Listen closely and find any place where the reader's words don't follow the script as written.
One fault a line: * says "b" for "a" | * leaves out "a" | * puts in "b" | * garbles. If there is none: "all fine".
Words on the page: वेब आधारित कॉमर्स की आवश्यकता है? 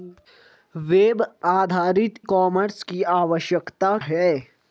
all fine